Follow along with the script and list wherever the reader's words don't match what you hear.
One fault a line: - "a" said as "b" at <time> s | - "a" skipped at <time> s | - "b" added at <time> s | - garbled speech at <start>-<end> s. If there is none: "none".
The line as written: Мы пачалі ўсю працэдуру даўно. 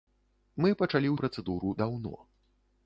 - "ўсю" skipped at 1.1 s